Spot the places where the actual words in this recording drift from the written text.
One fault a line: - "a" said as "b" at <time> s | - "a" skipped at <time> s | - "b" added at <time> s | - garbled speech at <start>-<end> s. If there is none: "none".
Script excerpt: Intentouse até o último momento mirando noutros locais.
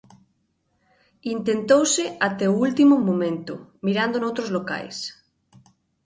none